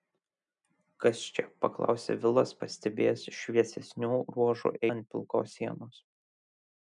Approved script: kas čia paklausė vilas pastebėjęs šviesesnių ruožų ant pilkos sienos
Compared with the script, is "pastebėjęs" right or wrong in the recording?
right